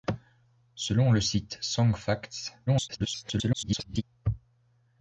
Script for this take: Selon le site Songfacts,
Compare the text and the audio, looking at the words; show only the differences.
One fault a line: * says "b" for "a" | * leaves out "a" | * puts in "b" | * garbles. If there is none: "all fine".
* garbles